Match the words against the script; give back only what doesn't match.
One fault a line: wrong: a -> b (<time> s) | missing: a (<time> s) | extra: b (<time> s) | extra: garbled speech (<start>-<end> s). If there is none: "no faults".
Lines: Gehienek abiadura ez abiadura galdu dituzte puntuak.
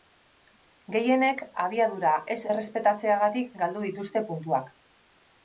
wrong: abiadura -> errespetatzeagatik (2.5 s)